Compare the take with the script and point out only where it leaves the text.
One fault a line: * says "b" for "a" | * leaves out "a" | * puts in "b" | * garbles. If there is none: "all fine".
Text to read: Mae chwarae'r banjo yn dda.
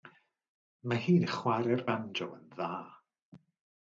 * puts in "hi'n"